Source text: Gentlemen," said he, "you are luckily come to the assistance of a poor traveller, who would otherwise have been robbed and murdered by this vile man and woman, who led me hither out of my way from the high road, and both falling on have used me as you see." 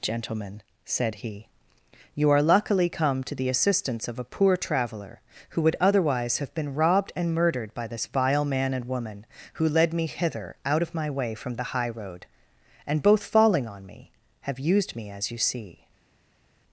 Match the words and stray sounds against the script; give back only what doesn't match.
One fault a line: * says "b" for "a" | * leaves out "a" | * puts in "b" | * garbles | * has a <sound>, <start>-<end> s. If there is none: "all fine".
* puts in "me"